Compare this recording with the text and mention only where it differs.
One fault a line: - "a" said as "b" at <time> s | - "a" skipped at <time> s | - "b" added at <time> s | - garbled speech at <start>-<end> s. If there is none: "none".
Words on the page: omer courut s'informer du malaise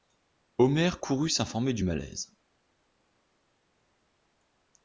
none